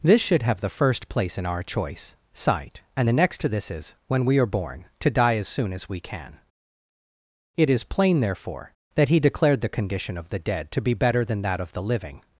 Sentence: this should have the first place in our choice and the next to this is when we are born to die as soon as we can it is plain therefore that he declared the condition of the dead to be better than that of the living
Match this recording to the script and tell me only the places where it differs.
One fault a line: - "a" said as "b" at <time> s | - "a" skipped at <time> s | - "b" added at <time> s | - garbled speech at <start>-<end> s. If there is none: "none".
- "sight" added at 2.3 s